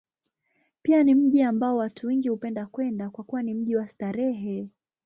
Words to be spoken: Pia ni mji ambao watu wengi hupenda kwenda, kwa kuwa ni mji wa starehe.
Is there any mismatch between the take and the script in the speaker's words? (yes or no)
no